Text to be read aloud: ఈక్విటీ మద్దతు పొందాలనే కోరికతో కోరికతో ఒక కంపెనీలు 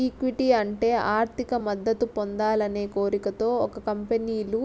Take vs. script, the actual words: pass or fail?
fail